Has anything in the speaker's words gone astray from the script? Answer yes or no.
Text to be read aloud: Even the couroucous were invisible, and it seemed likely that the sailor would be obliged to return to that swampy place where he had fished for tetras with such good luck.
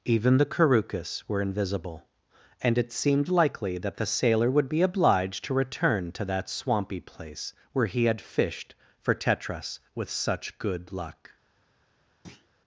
no